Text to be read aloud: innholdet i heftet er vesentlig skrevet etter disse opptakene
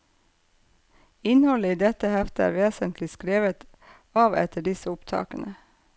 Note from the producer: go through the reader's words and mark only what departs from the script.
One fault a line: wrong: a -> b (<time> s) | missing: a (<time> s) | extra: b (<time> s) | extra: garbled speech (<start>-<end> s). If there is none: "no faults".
extra: dette (1.8 s)
extra: av (4.2 s)